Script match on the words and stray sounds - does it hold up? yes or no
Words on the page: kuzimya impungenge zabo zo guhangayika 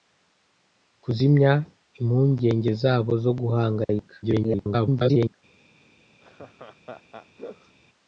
no